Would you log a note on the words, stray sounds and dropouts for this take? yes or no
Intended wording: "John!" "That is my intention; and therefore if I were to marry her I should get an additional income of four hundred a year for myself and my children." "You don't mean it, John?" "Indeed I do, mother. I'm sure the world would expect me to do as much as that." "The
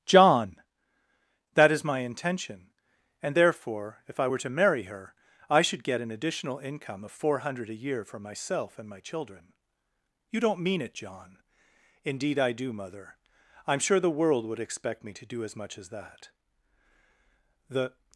no